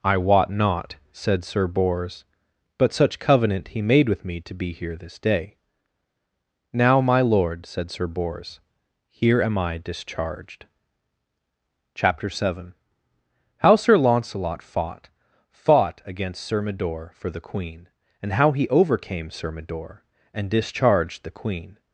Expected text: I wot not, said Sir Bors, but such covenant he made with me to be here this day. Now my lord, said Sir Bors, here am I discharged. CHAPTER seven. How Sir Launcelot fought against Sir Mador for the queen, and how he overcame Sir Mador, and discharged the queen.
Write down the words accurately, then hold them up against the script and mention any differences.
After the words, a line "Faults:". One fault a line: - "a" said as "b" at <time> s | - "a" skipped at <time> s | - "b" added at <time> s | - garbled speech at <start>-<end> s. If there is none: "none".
I wot not, said Sir Bors, but such covenant he made with me to be here this day. Now my lord, said Sir Bors, here am I discharged. CHAPTER seven. How Sir Launcelot fought fought against Sir Mador for the queen, and how he overcame Sir Mador, and discharged the queen.
Faults:
- "fought" added at 15.5 s